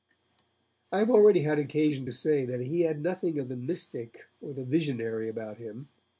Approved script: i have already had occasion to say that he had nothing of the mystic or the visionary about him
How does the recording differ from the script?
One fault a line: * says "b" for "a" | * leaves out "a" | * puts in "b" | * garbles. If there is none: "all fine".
all fine